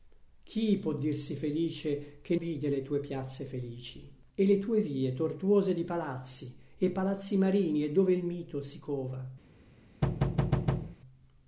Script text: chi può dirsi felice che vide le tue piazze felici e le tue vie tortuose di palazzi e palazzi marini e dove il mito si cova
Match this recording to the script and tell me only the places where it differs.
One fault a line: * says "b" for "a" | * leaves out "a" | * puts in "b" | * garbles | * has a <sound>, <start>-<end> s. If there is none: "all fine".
* has a thud, 10.0-11.0 s